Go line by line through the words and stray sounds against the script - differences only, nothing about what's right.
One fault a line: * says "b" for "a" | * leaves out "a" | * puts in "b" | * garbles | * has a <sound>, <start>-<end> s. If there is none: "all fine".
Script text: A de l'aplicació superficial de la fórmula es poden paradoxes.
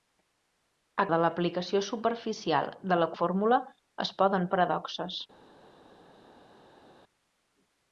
all fine